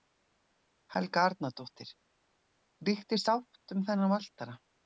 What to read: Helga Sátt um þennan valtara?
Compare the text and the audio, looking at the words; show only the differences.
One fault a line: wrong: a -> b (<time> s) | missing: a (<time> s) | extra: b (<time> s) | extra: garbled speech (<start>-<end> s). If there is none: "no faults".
extra: Arnardóttir Ríkti (1.3 s)